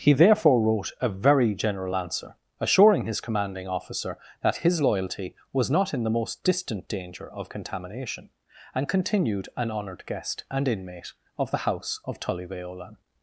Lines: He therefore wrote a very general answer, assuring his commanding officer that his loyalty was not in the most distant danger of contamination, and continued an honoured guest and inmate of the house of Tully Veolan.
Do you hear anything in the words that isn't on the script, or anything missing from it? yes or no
no